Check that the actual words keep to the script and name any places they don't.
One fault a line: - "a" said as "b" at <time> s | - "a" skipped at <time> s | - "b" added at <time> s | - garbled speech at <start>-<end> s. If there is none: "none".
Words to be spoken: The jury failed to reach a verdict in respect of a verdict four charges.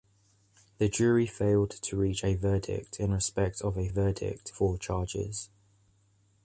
none